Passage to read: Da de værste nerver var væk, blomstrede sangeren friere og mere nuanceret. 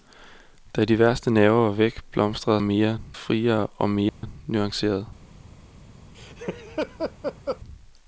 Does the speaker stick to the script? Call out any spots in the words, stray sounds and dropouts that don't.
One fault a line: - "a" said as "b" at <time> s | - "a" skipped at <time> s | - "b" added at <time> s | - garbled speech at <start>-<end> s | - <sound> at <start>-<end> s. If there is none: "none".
- "sangeren" said as "mere" at 2.6 s
- dropout at 4.1-4.2 s
- laugh at 6.1-7.6 s